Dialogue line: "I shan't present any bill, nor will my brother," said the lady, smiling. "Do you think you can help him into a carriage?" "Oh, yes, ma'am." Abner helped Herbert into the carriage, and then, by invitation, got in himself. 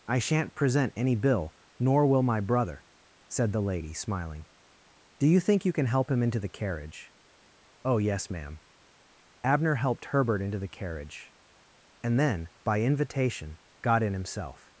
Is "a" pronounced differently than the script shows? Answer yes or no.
yes